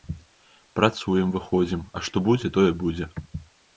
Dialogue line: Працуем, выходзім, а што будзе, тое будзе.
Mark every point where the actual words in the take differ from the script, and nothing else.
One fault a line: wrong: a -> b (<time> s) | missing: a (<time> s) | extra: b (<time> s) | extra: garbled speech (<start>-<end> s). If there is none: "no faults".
no faults